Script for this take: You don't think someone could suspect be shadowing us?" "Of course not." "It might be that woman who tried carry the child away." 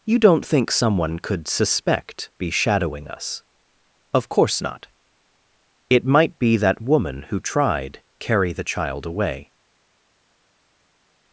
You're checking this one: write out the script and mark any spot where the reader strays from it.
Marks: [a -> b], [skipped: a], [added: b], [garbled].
You don't think someone could suspect be shadowing us?" "Of course not." "It might be that woman who tried carry the child away."